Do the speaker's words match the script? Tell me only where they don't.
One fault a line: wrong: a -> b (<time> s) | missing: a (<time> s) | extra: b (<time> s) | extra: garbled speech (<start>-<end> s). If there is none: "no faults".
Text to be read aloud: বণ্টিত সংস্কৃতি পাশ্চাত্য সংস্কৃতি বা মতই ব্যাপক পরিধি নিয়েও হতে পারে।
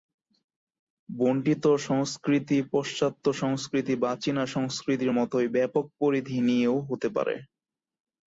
extra: চীনা সংস্কৃতির (4.2 s)